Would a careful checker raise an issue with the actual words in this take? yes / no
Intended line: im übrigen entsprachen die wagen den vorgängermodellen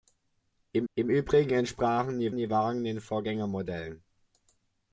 yes